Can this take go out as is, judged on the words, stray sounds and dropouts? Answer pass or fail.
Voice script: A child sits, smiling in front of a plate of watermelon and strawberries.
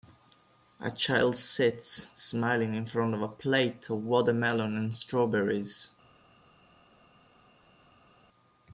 pass